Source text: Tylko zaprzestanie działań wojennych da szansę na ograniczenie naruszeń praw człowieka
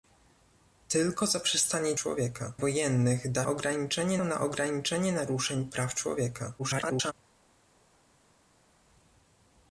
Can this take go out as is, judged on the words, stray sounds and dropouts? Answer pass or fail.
fail